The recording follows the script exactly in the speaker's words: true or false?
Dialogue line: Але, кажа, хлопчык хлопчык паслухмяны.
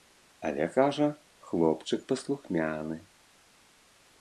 false